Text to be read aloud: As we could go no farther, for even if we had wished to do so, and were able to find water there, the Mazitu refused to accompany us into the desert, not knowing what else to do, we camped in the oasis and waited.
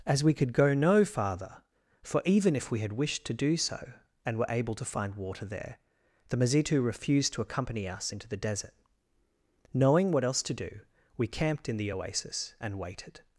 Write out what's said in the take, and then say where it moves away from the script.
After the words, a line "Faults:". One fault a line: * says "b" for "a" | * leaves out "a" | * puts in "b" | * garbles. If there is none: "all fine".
As we could go no farther, for even if we had wished to do so, and were able to find water there, the Mazitu refused to accompany us into the desert, knowing what else to do, we camped in the oasis and waited.
Faults:
* leaves out "not"